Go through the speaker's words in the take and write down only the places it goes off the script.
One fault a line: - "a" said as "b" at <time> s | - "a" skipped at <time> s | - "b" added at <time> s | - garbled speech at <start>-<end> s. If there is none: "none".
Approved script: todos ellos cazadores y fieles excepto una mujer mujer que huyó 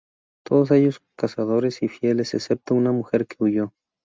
- "mujer" skipped at 3.3 s